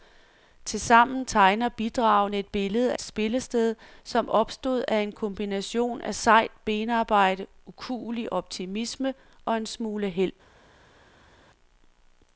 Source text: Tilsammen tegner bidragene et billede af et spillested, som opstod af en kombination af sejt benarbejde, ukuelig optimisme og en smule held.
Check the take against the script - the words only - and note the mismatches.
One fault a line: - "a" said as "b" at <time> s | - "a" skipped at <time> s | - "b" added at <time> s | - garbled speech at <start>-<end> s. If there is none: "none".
- "af" skipped at 2.9 s